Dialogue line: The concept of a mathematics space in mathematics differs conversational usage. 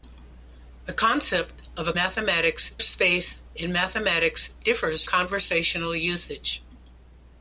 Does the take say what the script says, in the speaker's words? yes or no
yes